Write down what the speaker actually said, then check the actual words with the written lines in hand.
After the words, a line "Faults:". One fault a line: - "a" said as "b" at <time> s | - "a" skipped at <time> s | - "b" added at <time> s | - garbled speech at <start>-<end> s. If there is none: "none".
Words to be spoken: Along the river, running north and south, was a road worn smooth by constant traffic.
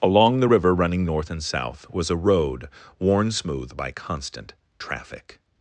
Along the river, running north and south, was a road worn smooth by constant traffic.
Faults:
none